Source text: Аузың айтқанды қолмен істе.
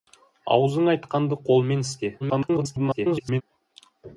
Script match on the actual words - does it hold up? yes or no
no